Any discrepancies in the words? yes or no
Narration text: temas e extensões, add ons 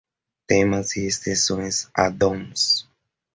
no